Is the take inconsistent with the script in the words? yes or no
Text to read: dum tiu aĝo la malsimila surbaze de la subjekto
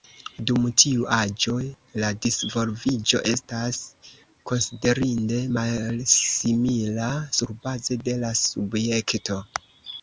yes